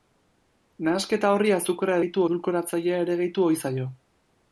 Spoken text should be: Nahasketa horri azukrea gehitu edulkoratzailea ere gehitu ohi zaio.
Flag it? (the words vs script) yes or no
no